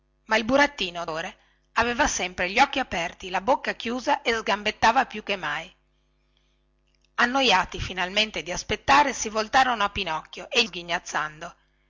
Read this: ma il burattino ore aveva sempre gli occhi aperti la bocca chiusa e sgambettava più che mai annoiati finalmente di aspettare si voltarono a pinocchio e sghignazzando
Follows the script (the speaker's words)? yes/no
yes